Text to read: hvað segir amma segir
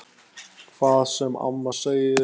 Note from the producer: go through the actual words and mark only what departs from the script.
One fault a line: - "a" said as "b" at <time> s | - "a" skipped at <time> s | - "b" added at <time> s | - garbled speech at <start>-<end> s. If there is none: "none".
- "segir" said as "sem" at 1.1 s